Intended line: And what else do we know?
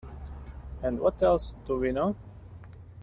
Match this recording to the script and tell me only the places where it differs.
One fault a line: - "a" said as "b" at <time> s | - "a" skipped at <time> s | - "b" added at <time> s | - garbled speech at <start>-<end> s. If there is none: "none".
none